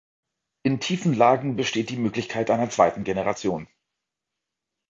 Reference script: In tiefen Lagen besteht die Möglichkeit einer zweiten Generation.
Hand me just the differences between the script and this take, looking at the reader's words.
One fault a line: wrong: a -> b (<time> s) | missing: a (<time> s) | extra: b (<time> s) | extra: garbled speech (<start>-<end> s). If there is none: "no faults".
no faults